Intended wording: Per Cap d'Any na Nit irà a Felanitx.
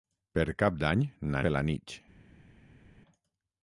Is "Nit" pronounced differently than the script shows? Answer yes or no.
yes